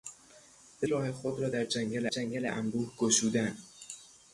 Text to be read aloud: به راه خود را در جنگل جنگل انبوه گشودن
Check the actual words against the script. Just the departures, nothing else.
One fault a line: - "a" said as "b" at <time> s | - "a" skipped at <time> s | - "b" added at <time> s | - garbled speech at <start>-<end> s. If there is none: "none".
none